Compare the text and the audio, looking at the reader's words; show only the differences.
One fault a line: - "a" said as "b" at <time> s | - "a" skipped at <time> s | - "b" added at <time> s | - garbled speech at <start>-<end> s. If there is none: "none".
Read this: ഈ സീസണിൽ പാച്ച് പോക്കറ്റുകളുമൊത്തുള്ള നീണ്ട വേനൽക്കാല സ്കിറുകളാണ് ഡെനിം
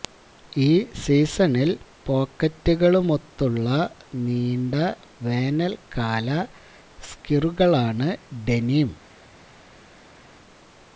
- "പാച്ച്" skipped at 1.7 s